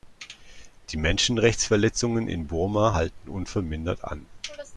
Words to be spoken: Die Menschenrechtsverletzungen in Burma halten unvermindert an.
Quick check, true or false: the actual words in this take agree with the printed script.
true